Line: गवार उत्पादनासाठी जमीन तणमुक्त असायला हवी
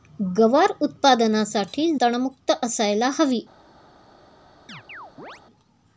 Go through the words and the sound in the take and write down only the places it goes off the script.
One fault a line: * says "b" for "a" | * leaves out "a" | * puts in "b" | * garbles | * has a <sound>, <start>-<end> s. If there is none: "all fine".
* leaves out "जमीन"
* has a chirp, 4.7-5.4 s